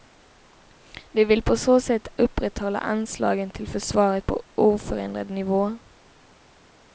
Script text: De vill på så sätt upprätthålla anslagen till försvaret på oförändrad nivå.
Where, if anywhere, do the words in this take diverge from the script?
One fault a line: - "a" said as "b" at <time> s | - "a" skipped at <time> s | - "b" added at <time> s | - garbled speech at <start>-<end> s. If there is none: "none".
none